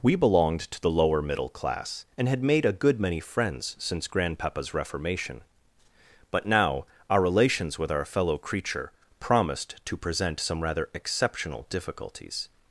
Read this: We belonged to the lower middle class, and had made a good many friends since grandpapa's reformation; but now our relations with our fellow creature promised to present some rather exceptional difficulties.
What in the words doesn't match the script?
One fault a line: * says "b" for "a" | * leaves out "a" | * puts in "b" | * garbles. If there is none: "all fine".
all fine